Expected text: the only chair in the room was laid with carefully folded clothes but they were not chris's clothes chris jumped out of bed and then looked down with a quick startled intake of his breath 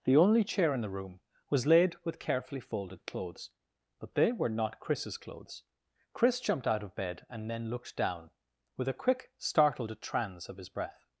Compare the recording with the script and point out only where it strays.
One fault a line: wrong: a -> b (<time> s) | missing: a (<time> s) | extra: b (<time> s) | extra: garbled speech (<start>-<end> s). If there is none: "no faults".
wrong: intake -> trans (10.0 s)